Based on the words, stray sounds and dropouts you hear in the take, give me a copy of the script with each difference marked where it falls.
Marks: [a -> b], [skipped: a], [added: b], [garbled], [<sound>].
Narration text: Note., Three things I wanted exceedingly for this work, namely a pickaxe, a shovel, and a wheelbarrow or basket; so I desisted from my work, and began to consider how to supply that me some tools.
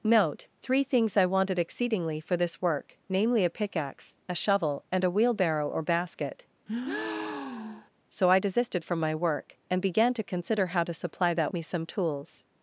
Note., Three things I wanted exceedingly for this work, namely a pickaxe, a shovel, and a wheelbarrow or basket; [breath] so I desisted from my work, and began to consider how to supply that me some tools.